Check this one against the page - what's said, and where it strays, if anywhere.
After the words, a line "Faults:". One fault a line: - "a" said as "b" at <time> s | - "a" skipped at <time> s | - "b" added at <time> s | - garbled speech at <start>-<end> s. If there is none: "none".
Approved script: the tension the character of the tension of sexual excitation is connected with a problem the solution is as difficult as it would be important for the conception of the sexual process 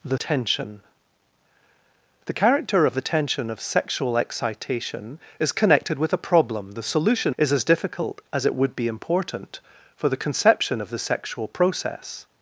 the tension the character of the tension of sexual excitation is connected with a problem the solution is as difficult as it would be important for the conception of the sexual process
Faults:
none